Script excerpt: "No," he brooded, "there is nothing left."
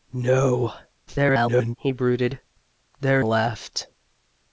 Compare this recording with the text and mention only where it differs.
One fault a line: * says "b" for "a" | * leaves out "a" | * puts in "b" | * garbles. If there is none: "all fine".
* garbles
* leaves out "is nothing"